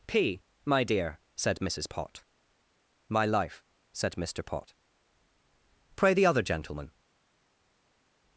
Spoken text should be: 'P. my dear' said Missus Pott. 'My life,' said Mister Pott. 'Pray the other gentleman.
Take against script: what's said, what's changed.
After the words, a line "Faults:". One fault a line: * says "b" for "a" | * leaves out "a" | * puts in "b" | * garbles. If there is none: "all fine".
'P. my dear' said Missus Pott. 'My life,' said Mister Pott. 'Pray the other gentleman.
Faults:
all fine